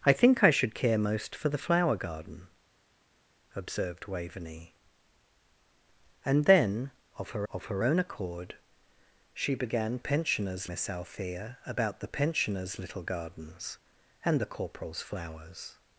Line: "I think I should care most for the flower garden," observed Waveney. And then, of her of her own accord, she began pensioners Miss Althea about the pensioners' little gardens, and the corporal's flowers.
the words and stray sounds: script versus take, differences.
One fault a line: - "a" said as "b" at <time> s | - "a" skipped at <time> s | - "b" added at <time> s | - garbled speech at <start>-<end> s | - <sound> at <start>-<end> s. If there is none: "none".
none